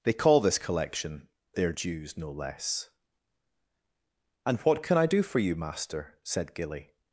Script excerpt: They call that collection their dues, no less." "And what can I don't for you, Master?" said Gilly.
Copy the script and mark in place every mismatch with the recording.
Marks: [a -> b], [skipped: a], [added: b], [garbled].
They call [that -> this] collection their dues, no less." "And what can I [don't -> do] for you, Master?" said Gilly.